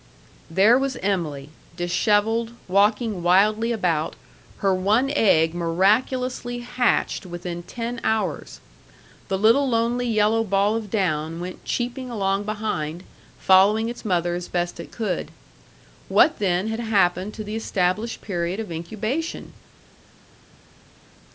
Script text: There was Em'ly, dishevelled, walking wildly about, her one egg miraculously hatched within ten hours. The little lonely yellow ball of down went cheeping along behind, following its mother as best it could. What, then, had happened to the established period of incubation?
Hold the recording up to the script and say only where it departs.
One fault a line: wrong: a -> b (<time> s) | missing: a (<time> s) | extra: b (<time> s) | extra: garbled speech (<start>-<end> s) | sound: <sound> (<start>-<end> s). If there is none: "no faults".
no faults